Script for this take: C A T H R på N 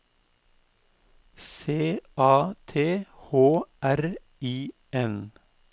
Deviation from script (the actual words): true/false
true